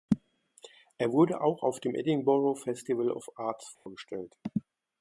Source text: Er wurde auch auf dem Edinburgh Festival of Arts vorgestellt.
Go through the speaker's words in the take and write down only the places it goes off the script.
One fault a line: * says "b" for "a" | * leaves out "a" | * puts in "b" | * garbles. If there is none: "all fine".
all fine